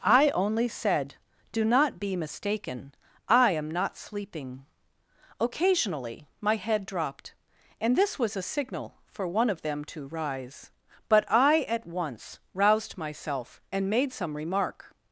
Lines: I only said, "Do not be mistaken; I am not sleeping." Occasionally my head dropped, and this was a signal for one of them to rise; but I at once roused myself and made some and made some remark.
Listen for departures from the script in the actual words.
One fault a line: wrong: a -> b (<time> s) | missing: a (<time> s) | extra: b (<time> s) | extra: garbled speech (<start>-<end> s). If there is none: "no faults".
missing: and made some (14.4 s)